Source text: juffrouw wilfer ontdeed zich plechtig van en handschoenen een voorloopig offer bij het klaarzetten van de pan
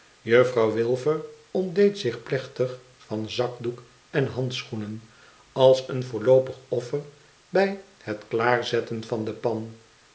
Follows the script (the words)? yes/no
no